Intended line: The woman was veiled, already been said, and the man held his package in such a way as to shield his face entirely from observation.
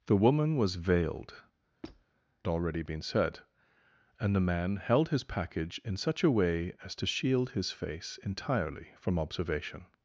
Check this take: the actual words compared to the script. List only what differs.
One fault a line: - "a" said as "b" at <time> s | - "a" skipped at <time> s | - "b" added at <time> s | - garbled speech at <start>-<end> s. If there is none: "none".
none